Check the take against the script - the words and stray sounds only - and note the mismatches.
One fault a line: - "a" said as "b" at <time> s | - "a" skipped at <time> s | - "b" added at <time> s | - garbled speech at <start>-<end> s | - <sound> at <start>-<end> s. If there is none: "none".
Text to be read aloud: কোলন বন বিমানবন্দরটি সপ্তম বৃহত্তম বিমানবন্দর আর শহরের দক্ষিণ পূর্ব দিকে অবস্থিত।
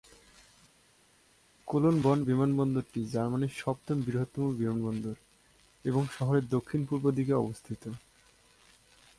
- "জার্মানির" added at 3.1 s
- "আর" said as "এবং" at 5.8 s